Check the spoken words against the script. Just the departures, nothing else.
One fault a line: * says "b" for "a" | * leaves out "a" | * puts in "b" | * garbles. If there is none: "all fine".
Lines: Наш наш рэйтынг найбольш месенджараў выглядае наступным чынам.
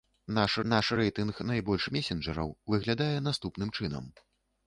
all fine